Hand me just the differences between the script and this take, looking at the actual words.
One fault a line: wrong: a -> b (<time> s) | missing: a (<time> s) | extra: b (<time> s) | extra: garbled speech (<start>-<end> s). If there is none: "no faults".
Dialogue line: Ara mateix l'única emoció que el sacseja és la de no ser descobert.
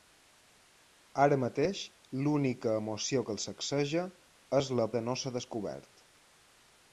no faults